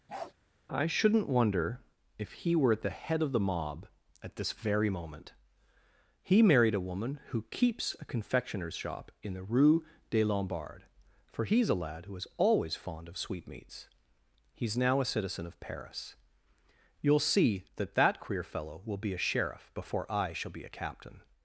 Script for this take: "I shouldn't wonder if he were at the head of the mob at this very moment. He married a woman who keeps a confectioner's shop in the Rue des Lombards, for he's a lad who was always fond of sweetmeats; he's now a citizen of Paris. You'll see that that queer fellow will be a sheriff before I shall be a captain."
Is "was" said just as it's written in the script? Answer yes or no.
no